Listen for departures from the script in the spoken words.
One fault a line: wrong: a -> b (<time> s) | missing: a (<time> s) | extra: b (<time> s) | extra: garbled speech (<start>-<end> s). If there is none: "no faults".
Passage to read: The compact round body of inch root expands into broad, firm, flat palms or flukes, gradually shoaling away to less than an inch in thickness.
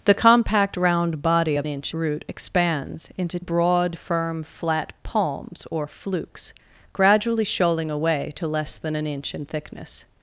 no faults